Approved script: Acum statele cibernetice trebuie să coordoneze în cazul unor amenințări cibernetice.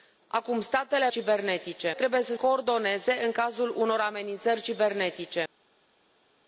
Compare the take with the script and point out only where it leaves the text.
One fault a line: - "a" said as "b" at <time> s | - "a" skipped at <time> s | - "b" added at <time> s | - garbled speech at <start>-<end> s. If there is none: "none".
none